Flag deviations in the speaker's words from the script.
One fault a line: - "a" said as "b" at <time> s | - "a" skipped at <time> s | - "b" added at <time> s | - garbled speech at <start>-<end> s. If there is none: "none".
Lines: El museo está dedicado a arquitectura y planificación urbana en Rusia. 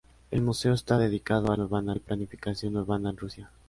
- "arquitectura" said as "urbana" at 1.6 s